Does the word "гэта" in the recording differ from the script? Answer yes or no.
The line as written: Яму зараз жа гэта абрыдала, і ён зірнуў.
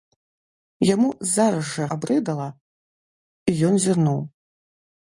yes